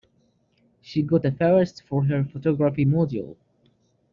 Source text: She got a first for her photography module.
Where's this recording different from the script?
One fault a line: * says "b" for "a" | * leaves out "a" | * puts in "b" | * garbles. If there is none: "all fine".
all fine